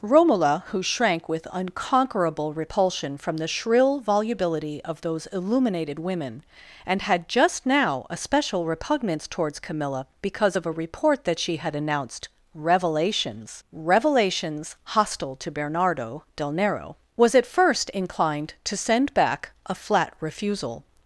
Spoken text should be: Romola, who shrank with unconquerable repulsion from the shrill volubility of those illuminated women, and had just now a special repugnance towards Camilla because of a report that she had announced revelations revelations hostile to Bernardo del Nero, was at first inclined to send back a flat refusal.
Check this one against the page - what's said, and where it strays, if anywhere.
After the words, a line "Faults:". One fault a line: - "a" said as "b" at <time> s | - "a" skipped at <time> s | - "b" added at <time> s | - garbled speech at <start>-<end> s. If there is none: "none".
Romola, who shrank with unconquerable repulsion from the shrill volubility of those illuminated women, and had just now a special repugnance towards Camilla because of a report that she had announced revelations revelations hostile to Bernardo del Nero, was at first inclined to send back a flat refusal.
Faults:
none